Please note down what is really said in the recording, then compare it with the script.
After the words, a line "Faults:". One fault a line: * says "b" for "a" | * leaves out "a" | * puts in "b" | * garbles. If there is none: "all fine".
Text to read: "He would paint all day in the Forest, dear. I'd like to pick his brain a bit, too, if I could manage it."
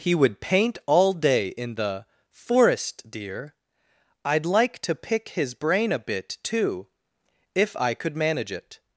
"He would paint all day in the Forest, dear. I'd like to pick his brain a bit, too, if I could manage it."
Faults:
all fine